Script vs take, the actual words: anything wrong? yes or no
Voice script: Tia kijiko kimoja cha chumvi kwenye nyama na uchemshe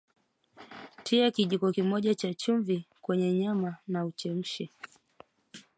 no